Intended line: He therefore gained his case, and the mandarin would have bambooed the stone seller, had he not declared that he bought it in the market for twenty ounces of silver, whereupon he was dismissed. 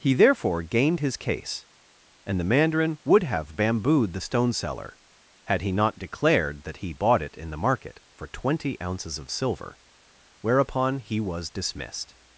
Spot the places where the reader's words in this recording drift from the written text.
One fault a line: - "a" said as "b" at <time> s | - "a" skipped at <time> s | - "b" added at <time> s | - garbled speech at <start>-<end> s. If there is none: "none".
none